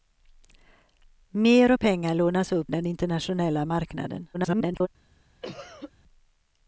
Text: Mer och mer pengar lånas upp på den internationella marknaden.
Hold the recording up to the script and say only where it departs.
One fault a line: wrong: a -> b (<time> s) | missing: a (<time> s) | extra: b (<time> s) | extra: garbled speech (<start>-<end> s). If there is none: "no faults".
missing: mer (1.8 s)
missing: på (2.7 s)
extra: garbled speech (4.3-4.9 s)